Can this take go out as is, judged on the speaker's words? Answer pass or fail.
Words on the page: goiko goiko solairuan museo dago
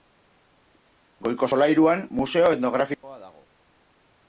fail